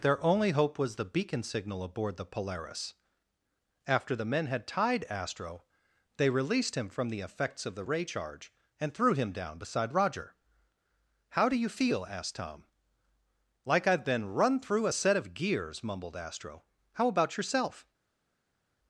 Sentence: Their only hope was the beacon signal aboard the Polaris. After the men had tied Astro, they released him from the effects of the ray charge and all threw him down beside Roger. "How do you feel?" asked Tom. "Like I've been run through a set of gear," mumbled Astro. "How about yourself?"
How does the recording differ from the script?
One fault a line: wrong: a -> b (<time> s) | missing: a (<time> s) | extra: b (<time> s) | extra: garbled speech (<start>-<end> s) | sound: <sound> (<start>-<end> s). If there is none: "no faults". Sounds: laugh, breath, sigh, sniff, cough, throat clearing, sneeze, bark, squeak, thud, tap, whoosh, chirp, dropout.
missing: all (8.9 s)
wrong: gear -> gears (15.3 s)